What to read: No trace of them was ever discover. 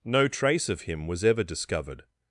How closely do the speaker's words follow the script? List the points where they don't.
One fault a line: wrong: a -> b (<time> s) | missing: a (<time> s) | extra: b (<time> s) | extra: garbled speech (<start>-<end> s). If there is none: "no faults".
wrong: them -> him (0.8 s)
wrong: discover -> discovered (1.4 s)